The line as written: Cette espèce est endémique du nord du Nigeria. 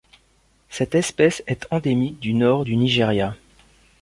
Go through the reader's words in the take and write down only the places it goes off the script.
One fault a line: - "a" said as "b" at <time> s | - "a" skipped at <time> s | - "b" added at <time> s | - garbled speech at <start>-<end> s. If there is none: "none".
none